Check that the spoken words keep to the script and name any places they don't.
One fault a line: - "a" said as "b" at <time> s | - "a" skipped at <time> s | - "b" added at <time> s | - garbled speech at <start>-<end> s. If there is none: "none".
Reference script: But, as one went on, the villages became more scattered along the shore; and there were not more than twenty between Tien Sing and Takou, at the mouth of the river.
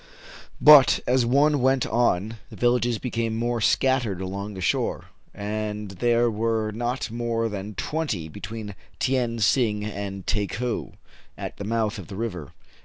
none